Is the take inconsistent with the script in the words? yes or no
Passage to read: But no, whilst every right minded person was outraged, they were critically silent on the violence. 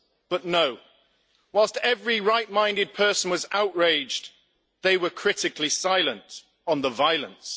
no